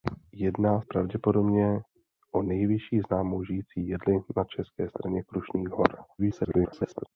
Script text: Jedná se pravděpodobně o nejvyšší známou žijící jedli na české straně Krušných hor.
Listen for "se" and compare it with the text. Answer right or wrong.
wrong